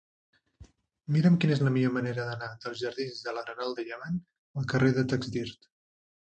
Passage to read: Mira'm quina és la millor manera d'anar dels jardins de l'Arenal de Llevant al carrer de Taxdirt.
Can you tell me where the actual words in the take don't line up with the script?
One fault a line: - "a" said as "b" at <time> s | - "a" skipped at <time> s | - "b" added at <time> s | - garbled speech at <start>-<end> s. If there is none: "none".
none